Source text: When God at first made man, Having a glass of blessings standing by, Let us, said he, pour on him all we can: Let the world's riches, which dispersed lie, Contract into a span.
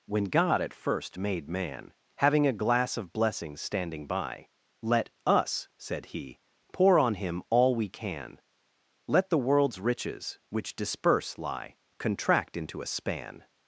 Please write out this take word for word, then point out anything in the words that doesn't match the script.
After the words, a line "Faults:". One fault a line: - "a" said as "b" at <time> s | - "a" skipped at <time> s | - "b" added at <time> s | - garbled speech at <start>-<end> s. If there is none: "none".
When God at first made man, Having a glass of blessings standing by, Let us, said he, pour on him all we can: Let the world's riches, which disperse lie, Contract into a span.
Faults:
- "dispersed" said as "disperse" at 10.7 s